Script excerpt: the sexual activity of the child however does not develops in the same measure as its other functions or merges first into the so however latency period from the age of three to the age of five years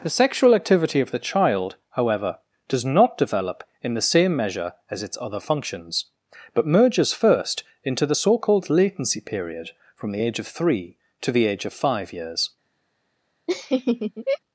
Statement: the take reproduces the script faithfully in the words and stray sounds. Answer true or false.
false